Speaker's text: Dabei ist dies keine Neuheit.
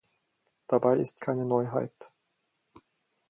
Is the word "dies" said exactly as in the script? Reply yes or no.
no